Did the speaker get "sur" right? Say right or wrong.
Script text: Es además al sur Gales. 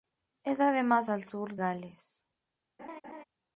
right